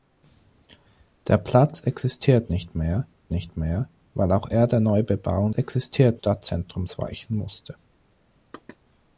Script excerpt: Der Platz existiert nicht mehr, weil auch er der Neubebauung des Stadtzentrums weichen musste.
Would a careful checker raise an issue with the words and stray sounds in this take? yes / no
yes